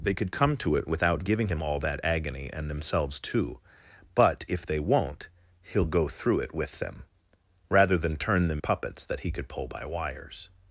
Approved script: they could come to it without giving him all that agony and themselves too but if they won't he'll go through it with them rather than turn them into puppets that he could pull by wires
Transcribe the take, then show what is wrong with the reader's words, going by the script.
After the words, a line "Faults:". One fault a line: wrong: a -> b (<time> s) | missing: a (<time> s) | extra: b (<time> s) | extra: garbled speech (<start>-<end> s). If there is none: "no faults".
they could come to it without giving him all that agony and themselves too but if they won't he'll go through it with them rather than turn them puppets that he could pull by wires
Faults:
missing: into (8.6 s)